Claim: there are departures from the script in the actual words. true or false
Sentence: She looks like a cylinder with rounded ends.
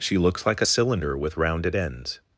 false